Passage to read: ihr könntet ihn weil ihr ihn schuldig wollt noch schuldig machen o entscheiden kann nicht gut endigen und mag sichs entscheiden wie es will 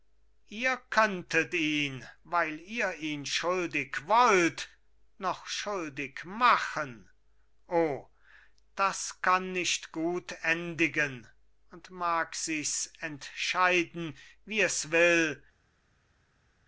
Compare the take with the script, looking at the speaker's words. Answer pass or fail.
fail